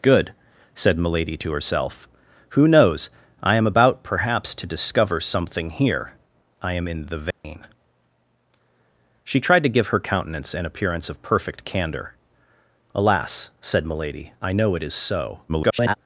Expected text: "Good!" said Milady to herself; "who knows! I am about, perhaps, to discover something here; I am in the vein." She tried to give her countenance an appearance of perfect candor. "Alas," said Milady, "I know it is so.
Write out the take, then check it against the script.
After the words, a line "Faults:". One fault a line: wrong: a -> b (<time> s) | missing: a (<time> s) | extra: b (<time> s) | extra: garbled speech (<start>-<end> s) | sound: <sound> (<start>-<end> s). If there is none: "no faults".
"Good!" said Milady to herself; "who knows! I am about, perhaps, to discover something here; I am in the vein." She tried to give her countenance an appearance of perfect candor. "Alas," said Milady, "I know it is so. [garbled]
Faults:
sound: dropout (7.3-7.4 s)
extra: garbled speech (15.5-15.9 s)